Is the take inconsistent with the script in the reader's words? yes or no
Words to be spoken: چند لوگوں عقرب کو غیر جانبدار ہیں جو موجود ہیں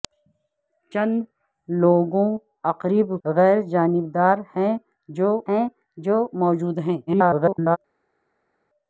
yes